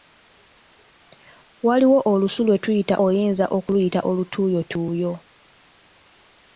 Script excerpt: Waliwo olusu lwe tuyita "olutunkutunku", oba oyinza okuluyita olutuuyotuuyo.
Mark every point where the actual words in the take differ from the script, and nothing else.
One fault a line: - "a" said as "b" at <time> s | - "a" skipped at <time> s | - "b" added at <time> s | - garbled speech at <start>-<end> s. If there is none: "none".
- "olutunkutunku oba" skipped at 3.0 s